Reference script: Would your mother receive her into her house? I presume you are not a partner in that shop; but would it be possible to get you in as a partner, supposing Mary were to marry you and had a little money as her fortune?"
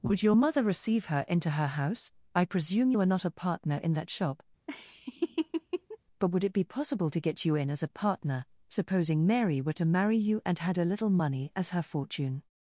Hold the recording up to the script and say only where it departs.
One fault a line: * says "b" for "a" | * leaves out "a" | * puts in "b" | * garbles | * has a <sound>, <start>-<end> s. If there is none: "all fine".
* has a laugh, 4.7-6.0 s